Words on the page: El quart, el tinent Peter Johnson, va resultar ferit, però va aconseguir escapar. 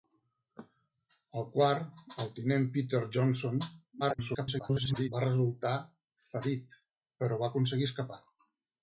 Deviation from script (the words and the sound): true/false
true